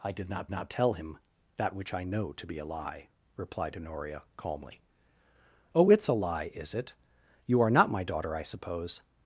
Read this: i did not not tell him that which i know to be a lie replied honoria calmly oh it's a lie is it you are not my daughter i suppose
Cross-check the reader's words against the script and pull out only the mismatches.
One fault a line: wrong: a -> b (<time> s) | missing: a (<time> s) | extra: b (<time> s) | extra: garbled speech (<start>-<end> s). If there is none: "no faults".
no faults